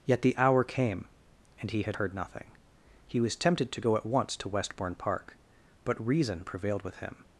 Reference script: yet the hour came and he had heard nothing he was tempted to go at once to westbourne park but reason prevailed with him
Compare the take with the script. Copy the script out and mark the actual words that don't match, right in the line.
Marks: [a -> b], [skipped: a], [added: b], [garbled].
yet the hour came and he had heard nothing he was tempted to go at once to westbourne park but reason prevailed with him